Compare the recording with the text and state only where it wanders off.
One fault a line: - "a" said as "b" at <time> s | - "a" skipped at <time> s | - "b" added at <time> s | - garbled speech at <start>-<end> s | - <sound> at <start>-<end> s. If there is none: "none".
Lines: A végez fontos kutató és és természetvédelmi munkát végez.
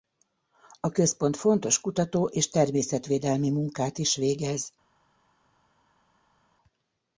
- "végez" said as "központ" at 0.9 s
- "és" skipped at 2.5 s
- "is" added at 4.0 s